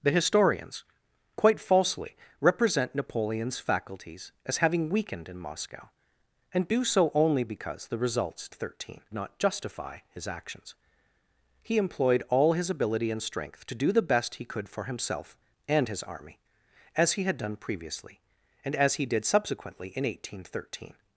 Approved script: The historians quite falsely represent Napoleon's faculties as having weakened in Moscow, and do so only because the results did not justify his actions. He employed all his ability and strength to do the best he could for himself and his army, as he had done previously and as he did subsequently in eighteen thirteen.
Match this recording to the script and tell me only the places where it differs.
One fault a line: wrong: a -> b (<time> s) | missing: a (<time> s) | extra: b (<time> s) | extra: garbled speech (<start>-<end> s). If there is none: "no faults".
wrong: did -> thirteen (8.5 s)